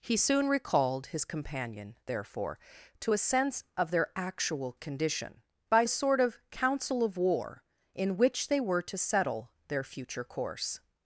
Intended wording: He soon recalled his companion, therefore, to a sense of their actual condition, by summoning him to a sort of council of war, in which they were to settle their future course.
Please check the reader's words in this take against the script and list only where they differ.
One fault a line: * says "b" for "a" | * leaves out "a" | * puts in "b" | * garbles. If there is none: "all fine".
* leaves out "summoning him to"